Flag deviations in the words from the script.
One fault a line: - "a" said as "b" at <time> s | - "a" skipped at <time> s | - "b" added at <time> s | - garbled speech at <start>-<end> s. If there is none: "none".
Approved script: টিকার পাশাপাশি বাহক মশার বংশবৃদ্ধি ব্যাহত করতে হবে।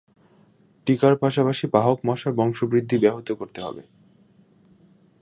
none